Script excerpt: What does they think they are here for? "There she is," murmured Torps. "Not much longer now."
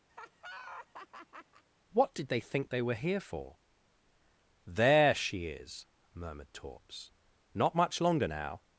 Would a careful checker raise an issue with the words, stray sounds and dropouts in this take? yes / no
yes